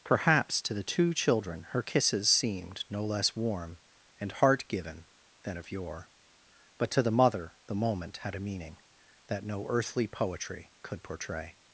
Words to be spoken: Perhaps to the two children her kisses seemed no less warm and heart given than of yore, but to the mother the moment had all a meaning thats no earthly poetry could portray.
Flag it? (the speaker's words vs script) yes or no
yes